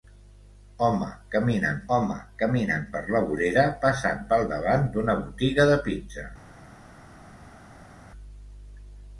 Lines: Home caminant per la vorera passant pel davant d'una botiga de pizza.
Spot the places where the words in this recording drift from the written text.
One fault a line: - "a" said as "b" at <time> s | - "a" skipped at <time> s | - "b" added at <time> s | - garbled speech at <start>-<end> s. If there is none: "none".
- "home caminant" added at 1.9 s